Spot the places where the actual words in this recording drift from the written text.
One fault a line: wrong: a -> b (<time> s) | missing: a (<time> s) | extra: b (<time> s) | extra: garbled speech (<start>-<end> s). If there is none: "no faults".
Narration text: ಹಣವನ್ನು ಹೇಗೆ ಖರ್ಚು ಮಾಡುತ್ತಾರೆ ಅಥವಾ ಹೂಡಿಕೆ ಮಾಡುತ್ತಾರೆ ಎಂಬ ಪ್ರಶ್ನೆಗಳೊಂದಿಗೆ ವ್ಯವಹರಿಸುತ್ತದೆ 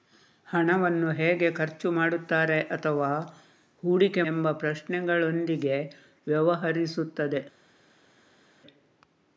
missing: ಮಾಡುತ್ತಾರೆ (4.2 s)